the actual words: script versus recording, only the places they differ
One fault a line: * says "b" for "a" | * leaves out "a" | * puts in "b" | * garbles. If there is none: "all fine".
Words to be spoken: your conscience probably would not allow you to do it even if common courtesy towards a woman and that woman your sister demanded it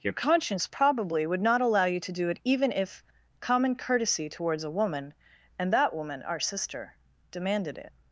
* says "our" for "your"